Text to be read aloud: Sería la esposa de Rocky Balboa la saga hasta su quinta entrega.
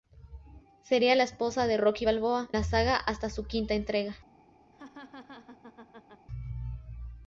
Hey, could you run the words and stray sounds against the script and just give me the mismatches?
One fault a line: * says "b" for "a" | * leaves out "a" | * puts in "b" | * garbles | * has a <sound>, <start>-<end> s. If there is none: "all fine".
* has a laugh, 4.7-6.3 s